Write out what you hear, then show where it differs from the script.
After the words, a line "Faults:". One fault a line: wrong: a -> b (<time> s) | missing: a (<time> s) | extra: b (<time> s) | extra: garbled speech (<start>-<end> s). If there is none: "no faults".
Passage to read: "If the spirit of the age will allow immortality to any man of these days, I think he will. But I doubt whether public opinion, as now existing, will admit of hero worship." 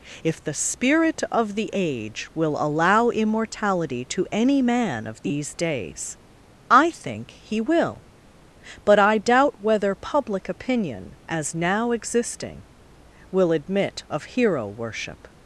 "If the spirit of the age will allow immortality to any man of these days, I think he will. But I doubt whether public opinion, as now existing, will admit of hero worship."
Faults:
no faults